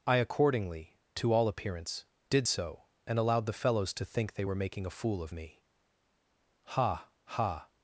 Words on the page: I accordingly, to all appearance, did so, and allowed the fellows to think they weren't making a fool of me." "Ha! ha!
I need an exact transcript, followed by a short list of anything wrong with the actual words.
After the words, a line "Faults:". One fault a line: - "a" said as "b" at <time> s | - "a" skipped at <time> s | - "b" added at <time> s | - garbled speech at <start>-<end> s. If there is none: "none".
I accordingly, to all appearance, did so, and allowed the fellows to think they were making a fool of me." "Ha! ha!
Faults:
- "weren't" said as "were" at 4.4 s